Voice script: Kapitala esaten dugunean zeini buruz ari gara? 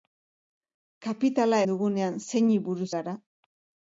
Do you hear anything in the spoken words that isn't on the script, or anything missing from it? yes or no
yes